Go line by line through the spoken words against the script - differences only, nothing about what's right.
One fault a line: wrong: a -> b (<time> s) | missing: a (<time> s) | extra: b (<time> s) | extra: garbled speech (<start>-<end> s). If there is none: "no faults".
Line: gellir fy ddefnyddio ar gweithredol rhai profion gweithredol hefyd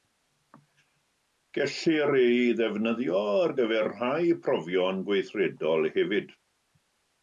wrong: fy -> ei (2.2 s)
wrong: gweithredol -> gyfer (3.6 s)